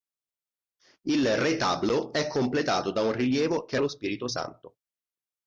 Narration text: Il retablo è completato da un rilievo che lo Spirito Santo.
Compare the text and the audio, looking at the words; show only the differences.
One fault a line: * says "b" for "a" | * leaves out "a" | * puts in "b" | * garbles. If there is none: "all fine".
all fine